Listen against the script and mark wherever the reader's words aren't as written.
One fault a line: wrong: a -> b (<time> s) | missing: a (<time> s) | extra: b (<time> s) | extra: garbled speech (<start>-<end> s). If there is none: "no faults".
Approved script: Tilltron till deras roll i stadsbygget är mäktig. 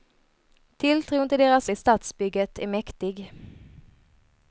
missing: roll (1.7 s)